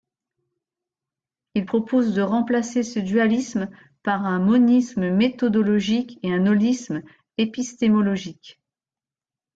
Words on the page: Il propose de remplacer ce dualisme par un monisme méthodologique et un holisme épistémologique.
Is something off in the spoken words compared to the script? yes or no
no